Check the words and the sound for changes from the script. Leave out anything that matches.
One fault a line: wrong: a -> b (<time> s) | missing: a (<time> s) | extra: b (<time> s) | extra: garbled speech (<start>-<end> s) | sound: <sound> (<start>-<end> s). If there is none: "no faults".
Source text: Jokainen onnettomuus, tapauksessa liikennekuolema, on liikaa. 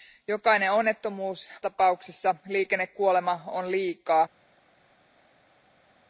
no faults